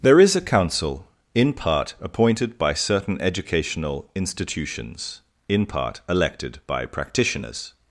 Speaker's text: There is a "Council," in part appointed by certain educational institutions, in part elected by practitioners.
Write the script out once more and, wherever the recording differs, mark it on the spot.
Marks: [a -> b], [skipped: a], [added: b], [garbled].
There is a "Council," in part appointed by certain educational institutions, in part elected by practitioners.